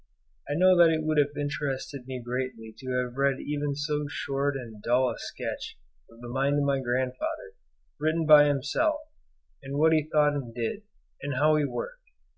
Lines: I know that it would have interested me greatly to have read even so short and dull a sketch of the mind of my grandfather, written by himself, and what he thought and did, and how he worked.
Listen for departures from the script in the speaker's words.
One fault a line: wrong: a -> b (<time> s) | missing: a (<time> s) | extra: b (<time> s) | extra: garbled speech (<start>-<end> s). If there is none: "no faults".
no faults